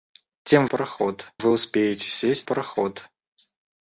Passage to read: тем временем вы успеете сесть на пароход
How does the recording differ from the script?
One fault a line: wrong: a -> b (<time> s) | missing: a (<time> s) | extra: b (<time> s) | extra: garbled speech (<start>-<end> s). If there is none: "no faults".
wrong: временем -> пароход (0.6 s)
missing: на (2.5 s)